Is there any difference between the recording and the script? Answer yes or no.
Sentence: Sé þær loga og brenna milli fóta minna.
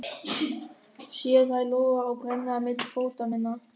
no